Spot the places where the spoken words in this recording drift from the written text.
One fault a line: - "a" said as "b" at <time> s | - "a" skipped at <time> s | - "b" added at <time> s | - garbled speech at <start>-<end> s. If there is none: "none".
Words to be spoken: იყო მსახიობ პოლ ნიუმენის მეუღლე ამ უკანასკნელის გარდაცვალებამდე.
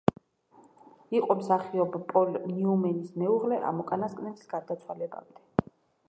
none